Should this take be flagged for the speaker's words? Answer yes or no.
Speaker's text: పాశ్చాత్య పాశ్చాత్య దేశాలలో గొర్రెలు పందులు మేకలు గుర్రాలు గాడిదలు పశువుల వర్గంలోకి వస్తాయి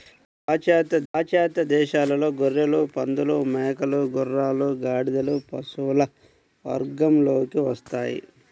no